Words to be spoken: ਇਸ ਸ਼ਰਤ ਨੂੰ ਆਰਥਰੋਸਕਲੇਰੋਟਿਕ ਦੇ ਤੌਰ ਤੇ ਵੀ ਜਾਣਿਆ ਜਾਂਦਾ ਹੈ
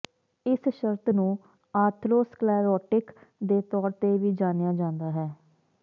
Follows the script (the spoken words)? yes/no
yes